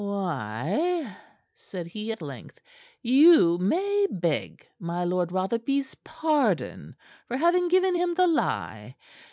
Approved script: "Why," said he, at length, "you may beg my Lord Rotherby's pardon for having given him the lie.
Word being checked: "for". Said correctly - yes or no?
yes